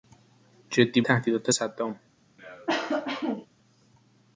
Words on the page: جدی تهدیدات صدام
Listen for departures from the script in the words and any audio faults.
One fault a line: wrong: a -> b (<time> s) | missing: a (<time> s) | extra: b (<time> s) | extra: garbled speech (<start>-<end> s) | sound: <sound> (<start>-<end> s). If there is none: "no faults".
sound: cough (2.4-3.5 s)